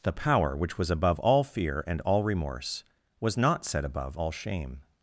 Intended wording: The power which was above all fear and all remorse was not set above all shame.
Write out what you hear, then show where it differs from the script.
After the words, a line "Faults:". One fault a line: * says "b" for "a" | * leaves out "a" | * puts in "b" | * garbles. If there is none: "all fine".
The power which was above all fear and all remorse was not set above all shame.
Faults:
all fine